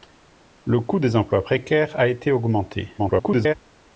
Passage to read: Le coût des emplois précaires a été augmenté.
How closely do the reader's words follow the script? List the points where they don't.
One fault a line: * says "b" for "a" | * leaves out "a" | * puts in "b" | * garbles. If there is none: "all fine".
* garbles